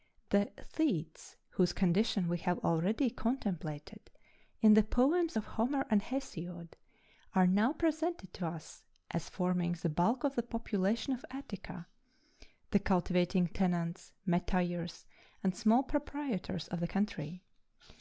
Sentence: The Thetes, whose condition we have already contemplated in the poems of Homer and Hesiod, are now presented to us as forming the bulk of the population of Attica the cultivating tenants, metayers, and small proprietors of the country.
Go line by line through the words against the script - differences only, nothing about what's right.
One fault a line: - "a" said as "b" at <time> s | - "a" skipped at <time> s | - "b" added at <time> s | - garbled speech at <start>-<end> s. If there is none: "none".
none